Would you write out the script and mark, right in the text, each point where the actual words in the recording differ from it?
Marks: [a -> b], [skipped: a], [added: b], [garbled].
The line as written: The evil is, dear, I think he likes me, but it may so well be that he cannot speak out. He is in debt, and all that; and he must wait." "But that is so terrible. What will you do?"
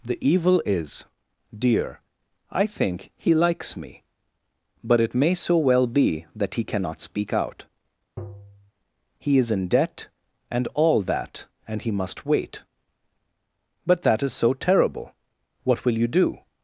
The evil is, dear, I think he likes me, but it may so well be that he cannot speak out. He is in debt, and all that; and he must wait." "But that is so terrible. What will you do?"